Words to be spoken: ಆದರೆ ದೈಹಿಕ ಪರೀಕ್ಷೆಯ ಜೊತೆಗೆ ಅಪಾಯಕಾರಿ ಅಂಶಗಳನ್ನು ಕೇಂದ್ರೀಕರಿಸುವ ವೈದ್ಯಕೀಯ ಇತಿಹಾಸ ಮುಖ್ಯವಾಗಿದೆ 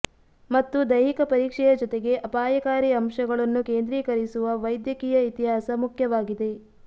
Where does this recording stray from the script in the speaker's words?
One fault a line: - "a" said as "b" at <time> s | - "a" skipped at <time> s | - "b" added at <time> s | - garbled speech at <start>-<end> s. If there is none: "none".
- "ಆದರೆ" said as "ಮತ್ತು" at 0.5 s